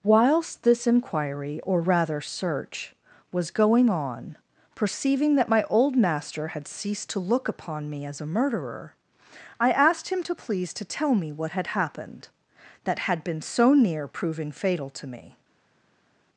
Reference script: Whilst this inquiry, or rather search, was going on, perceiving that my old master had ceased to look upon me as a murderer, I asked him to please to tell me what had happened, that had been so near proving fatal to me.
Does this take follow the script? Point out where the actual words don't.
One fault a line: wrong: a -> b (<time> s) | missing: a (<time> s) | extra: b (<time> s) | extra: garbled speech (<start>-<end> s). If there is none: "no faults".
no faults